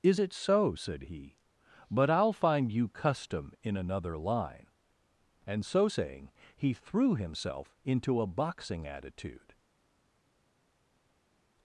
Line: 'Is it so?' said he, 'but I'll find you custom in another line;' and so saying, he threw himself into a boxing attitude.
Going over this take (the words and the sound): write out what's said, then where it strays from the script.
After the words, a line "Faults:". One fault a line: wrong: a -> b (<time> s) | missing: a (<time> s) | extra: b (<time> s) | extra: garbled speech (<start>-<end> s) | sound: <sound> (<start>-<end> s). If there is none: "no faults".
'Is it so?' said he, 'but I'll find you custom in another line;' and so saying, he threw himself into a boxing attitude.
Faults:
no faults